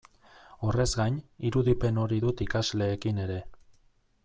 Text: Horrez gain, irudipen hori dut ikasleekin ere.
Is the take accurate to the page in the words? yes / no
yes